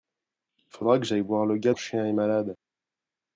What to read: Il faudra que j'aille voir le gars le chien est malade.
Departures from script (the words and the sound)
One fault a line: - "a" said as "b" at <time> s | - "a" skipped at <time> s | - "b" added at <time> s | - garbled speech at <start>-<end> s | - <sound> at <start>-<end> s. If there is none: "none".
none